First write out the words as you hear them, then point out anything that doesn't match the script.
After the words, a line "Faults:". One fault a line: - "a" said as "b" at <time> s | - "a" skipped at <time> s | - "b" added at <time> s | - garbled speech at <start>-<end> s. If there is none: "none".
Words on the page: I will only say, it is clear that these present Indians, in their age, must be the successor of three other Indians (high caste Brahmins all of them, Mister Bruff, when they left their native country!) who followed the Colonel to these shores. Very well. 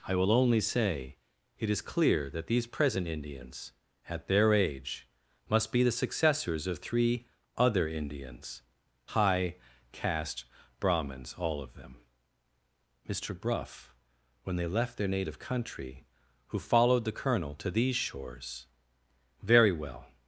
I will only say, it is clear that these present Indians, at their age, must be the successors of three other Indians (high caste Brahmins all of them, Mister Bruff, when they left their native country!) who followed the Colonel to these shores. Very well.
Faults:
- "in" said as "at" at 4.1 s
- "successor" said as "successors" at 5.9 s